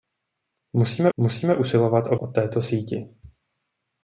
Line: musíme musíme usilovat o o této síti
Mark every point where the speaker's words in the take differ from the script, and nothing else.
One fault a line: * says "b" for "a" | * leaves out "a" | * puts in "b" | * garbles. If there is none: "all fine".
all fine